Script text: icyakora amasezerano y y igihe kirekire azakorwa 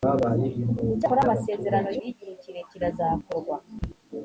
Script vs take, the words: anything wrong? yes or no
no